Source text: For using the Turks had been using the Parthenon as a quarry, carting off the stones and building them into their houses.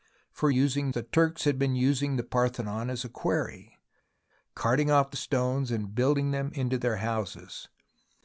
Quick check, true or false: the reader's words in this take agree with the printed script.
true